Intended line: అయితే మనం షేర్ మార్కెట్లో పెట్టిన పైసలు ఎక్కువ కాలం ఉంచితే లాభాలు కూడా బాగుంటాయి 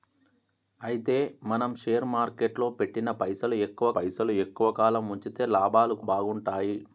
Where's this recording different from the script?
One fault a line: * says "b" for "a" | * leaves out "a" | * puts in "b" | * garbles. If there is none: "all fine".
* puts in "పైసలు ఎక్కువ"
* leaves out "కూడా"